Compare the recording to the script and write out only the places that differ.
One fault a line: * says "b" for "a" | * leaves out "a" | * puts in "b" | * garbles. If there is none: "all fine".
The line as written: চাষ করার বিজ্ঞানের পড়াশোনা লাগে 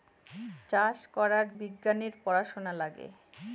all fine